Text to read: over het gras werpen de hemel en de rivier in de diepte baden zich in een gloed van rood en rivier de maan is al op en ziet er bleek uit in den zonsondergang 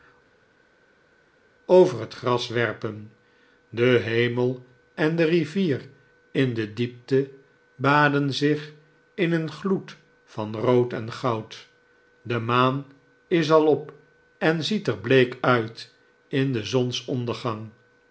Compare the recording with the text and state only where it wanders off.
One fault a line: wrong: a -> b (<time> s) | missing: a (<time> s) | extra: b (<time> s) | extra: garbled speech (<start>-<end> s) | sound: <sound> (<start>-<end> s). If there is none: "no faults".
wrong: rivier -> goud (11.1 s)